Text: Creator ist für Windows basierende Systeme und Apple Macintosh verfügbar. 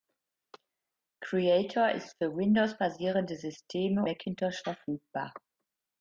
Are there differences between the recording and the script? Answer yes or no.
yes